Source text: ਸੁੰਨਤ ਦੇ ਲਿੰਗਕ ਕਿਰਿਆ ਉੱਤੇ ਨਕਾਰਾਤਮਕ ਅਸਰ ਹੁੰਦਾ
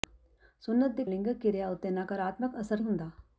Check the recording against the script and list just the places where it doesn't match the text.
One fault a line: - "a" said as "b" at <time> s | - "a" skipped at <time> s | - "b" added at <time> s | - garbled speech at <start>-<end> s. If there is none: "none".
none